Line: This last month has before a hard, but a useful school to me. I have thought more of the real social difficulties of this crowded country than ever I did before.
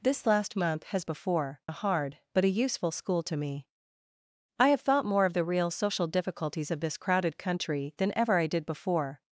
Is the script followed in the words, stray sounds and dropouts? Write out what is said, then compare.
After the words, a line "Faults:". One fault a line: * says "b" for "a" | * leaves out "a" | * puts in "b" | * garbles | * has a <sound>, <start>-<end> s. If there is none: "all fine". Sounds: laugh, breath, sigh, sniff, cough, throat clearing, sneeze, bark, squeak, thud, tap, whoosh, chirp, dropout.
This last month has before a hard, but a useful school to me. I have thought more of the real social difficulties of this crowded country than ever I did before.
Faults:
all fine